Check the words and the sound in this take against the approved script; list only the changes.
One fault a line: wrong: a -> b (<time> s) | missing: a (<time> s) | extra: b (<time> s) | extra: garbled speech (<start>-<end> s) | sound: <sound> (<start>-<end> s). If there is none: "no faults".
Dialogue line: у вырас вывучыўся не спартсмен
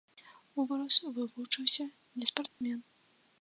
sound: dropout (2.5-2.6 s)